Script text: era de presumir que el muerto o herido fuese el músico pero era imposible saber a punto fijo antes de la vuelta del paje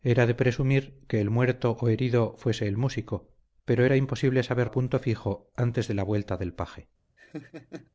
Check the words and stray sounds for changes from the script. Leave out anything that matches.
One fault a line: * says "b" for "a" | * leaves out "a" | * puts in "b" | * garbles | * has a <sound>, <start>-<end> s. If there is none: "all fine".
* has a laugh, 7.2-7.9 s